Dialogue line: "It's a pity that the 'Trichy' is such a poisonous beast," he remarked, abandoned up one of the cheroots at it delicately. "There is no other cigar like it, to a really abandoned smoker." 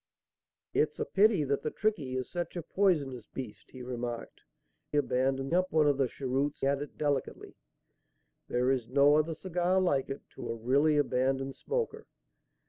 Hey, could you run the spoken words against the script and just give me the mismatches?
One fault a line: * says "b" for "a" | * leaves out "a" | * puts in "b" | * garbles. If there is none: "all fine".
all fine